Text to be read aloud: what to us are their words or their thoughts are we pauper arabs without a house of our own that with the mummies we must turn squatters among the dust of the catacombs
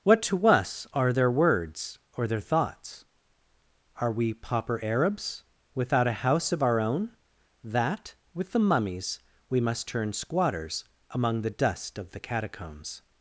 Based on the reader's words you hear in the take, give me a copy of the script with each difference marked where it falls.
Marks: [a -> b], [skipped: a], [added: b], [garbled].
what to us are their words or their thoughts are we pauper arabs without a house of our own that with the mummies we must turn squatters among the dust of the catacombs